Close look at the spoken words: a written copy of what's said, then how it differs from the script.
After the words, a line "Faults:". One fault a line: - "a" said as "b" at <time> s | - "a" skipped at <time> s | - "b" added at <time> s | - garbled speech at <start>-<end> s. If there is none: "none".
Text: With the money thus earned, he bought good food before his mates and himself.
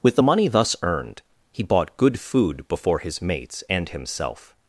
With the money thus earned, he bought good food before his mates and himself.
Faults:
none